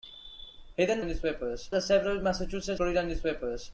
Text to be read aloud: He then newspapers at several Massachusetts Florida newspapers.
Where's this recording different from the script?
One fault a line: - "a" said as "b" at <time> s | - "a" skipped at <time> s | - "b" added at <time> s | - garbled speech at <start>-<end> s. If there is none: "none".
none